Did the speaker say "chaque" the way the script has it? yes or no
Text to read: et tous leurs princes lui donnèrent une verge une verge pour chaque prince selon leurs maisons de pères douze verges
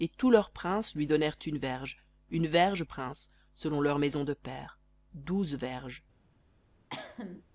no